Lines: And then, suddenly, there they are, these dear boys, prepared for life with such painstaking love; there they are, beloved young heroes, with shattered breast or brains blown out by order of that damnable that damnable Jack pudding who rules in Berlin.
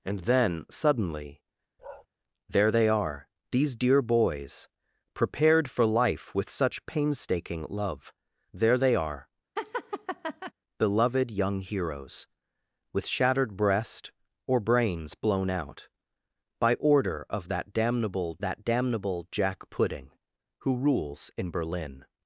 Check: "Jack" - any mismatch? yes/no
no